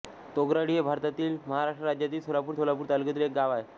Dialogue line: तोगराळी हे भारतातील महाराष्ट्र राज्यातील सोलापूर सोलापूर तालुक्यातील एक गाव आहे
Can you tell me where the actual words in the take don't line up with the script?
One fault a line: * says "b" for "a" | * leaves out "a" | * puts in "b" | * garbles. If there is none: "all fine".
all fine